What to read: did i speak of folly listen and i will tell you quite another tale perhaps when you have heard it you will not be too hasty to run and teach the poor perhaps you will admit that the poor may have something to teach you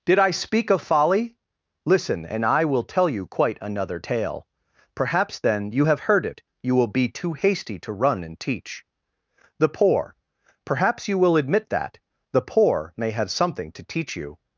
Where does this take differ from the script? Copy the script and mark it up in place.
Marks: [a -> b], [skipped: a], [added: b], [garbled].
did i speak of folly listen and i will tell you quite another tale perhaps [when -> then] you have heard it you will [skipped: not] be too hasty to run and teach the poor perhaps you will admit that the poor may have something to teach you